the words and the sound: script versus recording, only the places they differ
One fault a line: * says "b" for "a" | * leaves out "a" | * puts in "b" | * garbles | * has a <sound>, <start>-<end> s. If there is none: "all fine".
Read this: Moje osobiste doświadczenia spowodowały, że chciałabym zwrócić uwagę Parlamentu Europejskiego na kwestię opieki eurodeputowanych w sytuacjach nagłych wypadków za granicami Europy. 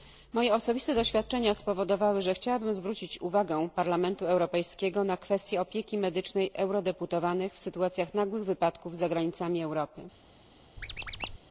* puts in "medycznej"
* has a squeak, 10.8-11.4 s